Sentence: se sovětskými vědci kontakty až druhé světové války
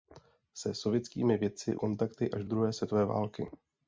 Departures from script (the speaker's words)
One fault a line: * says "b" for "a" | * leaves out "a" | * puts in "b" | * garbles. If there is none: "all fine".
all fine